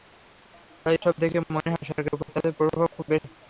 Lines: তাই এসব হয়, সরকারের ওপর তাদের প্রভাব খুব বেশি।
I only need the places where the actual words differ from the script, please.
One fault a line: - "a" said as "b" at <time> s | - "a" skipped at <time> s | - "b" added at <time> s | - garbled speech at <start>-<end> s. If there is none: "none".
- "দেখে মনে" added at 1.2 s